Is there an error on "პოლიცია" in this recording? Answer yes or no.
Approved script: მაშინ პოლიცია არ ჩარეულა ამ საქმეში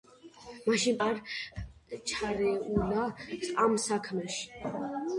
yes